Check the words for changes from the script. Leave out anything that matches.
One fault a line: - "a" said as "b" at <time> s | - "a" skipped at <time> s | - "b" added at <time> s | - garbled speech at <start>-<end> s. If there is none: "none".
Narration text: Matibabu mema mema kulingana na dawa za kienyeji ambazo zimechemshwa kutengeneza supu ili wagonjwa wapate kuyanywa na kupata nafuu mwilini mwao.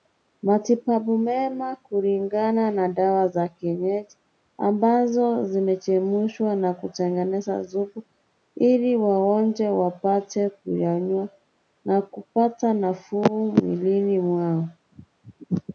- "mema" skipped at 1.8 s
- "na" added at 6.5 s